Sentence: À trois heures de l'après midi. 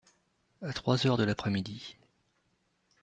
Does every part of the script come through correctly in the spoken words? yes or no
yes